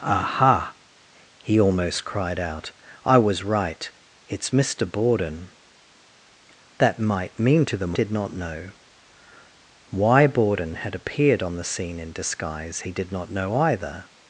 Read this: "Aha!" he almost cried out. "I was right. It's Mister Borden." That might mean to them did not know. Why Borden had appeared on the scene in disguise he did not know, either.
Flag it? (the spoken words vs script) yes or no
no